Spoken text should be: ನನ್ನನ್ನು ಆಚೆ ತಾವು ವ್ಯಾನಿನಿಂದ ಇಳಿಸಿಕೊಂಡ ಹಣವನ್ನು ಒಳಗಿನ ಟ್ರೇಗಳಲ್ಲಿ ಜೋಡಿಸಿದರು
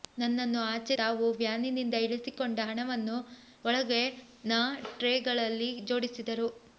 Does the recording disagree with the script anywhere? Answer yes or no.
no